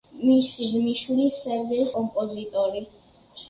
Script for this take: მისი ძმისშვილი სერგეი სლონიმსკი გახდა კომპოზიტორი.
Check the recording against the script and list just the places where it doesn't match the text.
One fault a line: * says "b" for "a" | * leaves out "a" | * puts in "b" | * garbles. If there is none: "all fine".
* leaves out "სლონიმსკი გახდა"